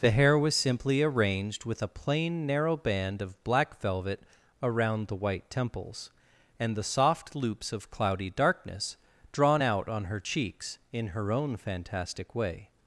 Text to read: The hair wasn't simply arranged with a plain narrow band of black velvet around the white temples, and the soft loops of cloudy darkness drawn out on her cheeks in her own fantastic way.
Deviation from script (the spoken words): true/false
true